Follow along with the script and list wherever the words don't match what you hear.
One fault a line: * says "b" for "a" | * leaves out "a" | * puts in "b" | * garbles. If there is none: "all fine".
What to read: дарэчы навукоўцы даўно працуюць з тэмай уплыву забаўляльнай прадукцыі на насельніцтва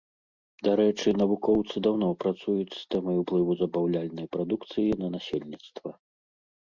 all fine